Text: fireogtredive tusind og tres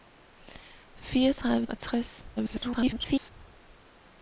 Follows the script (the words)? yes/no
no